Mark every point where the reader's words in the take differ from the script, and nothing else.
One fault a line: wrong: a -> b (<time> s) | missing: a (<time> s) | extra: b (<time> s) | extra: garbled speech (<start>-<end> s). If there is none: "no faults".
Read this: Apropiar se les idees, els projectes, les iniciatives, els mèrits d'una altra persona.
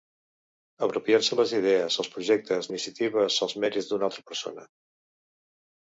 missing: les (2.7 s)